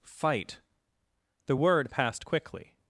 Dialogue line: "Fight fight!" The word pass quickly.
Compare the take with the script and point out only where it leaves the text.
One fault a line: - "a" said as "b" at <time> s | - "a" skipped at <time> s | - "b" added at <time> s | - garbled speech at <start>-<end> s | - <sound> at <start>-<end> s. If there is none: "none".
- "fight" skipped at 0.6 s
- "pass" said as "passed" at 1.9 s